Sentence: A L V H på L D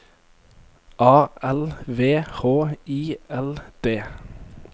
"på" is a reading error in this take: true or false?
true